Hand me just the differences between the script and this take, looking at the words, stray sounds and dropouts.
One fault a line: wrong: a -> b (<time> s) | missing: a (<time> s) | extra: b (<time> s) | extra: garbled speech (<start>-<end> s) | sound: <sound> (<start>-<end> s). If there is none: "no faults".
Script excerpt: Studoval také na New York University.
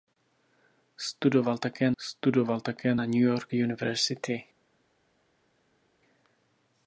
extra: studoval také (2.0 s)